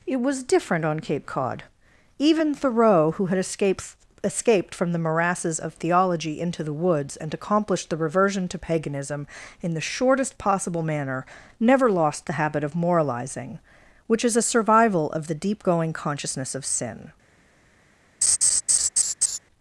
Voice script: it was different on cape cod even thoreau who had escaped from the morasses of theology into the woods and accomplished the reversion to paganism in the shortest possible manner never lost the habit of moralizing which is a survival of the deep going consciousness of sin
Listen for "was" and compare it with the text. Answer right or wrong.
right